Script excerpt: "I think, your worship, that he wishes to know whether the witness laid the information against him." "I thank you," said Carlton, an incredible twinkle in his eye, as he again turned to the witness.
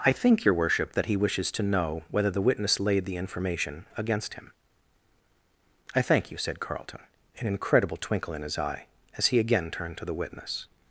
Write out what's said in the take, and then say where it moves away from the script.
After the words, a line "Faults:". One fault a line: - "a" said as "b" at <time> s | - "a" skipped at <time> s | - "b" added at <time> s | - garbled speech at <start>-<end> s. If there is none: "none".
"I think, your worship, that he wishes to know whether the witness laid the information against him." "I thank you," said Carlton, an incredible twinkle in his eye, as he again turned to the witness.
Faults:
none